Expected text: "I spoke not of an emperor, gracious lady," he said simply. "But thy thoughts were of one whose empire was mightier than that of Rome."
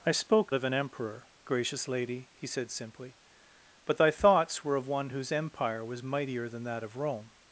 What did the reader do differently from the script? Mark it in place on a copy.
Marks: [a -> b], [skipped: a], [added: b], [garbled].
"I spoke [skipped: not] of an emperor, gracious lady," he said simply. "But thy thoughts were of one whose empire was mightier than that of Rome."